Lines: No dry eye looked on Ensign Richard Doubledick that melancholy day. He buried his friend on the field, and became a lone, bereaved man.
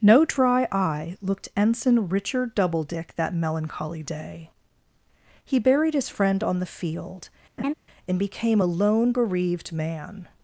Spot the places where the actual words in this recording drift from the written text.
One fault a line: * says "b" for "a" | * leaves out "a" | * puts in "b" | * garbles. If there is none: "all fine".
* leaves out "on"